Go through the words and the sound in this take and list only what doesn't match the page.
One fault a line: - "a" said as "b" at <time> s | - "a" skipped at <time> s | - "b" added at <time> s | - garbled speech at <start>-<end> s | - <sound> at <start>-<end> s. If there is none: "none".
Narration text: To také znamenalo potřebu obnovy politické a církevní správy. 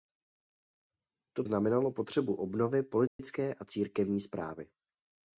- "také" skipped at 1.4 s
- dropout at 3.1-3.2 s